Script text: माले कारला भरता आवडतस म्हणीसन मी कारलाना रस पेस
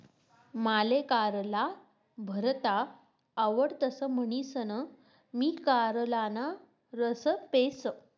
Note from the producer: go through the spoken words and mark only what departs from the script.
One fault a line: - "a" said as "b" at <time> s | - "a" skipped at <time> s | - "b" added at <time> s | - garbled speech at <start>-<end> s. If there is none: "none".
none